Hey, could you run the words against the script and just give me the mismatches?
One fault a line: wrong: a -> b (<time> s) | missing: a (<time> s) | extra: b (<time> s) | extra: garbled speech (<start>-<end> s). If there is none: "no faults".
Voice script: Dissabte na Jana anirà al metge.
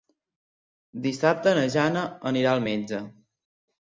no faults